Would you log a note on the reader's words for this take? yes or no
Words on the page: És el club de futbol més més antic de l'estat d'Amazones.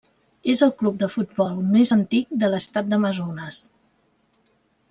yes